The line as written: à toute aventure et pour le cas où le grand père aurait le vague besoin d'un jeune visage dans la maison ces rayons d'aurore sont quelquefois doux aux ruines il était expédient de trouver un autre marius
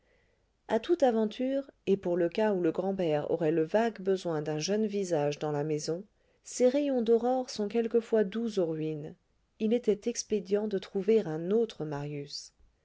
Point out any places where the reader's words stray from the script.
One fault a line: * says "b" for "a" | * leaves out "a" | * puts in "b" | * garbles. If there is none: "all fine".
all fine